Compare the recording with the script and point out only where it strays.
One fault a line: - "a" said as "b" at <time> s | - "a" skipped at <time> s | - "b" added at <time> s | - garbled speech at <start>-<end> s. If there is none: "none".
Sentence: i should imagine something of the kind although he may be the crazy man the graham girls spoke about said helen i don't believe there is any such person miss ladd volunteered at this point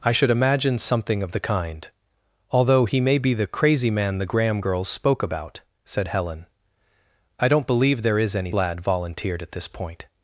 - "such person miss" skipped at 8.5 s